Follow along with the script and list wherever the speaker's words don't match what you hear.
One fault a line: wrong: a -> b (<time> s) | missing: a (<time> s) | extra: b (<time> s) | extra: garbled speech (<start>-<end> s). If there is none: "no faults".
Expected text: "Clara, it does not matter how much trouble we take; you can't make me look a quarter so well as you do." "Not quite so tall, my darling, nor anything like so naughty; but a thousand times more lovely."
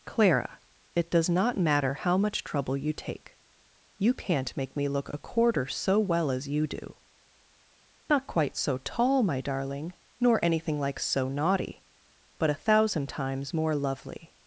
wrong: we -> you (2.8 s)